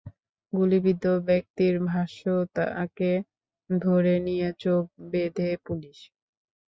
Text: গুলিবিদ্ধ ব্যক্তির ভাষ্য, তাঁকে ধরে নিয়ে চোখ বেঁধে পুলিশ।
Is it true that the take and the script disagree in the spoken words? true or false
false